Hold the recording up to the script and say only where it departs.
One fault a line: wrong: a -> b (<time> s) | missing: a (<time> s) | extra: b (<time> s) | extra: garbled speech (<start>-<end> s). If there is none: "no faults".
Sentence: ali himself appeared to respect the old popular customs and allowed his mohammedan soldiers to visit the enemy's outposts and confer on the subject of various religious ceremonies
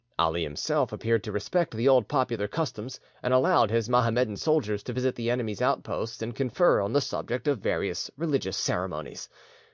no faults